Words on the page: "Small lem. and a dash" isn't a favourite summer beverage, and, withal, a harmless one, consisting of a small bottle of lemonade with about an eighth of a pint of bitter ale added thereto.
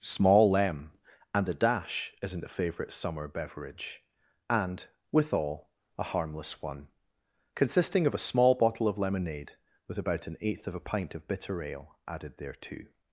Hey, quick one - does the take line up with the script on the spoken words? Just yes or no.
yes